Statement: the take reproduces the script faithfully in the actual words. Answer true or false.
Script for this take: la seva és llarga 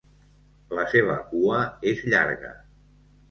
false